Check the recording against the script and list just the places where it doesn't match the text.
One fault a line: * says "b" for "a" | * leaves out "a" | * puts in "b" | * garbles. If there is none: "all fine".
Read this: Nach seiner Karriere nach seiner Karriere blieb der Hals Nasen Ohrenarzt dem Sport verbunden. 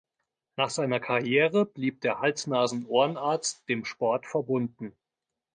* leaves out "nach seiner Karriere"